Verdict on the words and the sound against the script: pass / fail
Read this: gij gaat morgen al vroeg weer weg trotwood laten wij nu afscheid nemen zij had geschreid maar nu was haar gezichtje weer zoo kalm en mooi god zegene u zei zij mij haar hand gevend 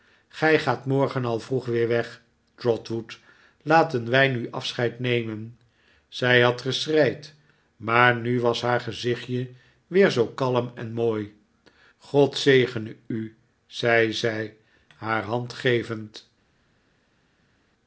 fail